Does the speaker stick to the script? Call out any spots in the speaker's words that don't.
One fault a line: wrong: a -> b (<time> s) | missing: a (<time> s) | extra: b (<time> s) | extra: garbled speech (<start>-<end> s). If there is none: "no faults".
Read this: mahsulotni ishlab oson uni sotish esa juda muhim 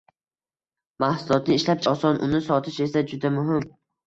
no faults